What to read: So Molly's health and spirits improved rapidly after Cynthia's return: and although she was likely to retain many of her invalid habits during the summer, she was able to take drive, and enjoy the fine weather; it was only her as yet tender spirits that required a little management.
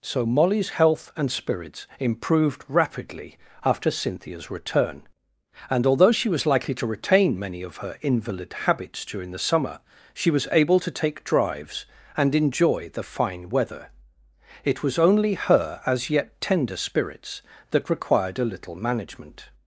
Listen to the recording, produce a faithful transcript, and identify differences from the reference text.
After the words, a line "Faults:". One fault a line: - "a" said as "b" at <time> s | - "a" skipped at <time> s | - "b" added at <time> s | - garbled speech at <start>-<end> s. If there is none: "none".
So Molly's health and spirits improved rapidly after Cynthia's return: and although she was likely to retain many of her invalid habits during the summer, she was able to take drives, and enjoy the fine weather; it was only her as yet tender spirits that required a little management.
Faults:
- "drive" said as "drives" at 11.2 s